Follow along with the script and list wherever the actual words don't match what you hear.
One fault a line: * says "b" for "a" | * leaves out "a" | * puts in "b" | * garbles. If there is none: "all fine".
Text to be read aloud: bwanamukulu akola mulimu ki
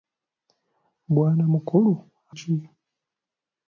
* leaves out "akola mulimu"